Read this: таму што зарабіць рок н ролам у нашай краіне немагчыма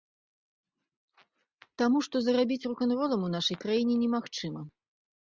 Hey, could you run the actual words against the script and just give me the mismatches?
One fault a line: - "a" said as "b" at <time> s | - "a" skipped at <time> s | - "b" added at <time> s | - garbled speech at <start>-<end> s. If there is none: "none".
none